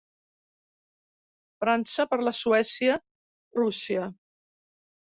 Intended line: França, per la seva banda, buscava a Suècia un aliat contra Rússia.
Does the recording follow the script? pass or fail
fail